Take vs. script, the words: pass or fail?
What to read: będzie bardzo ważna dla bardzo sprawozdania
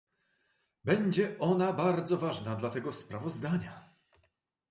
fail